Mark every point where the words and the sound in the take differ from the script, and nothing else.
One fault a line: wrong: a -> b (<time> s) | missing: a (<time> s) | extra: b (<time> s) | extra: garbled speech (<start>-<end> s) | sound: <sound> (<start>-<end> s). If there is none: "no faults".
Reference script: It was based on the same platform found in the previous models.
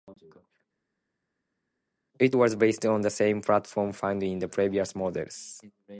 no faults